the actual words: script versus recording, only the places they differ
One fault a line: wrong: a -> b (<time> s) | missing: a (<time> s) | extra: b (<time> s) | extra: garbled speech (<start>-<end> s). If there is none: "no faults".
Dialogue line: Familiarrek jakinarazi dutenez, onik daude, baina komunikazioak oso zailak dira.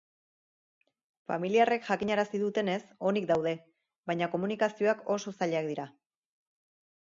no faults